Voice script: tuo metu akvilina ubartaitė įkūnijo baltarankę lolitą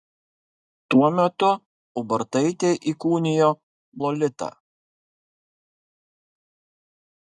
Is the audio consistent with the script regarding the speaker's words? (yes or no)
no